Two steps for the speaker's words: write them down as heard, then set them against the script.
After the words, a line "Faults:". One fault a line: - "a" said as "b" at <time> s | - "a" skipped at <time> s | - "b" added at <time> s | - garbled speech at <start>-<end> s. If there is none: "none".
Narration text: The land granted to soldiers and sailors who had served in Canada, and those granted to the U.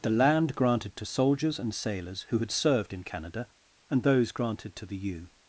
The land granted to soldiers and sailors who had served in Canada, and those granted to the U.
Faults:
none